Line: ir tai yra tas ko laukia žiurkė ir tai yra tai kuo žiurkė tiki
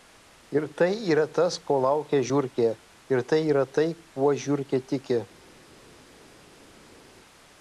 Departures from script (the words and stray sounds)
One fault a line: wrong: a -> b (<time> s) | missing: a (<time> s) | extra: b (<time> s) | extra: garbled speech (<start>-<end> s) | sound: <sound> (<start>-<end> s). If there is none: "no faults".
no faults